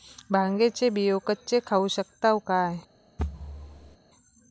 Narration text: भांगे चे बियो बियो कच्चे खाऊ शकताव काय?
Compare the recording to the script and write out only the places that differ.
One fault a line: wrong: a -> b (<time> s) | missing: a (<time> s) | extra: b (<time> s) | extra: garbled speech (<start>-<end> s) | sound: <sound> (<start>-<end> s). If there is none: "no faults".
missing: बियो (1.2 s)
sound: thud (3.2-4.0 s)